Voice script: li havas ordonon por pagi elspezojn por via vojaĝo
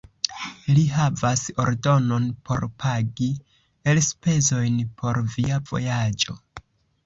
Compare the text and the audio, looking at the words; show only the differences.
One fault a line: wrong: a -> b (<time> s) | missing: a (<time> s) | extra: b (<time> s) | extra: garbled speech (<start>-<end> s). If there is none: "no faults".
no faults